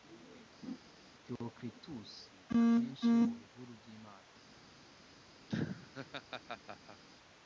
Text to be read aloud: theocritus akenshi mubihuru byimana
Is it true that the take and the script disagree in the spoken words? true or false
false